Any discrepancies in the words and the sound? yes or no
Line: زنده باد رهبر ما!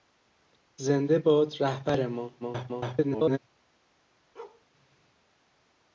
yes